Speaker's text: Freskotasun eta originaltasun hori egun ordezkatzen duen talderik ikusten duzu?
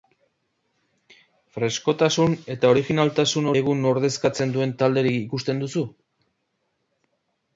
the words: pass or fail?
fail